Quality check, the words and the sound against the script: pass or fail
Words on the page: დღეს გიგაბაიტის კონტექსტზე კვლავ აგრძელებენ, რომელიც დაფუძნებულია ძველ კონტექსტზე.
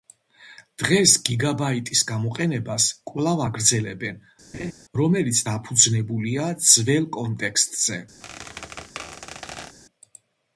fail